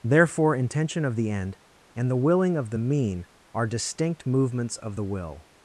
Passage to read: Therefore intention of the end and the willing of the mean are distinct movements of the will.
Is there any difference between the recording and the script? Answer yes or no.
no